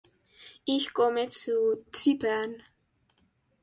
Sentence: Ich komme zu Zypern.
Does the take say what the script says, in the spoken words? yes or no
yes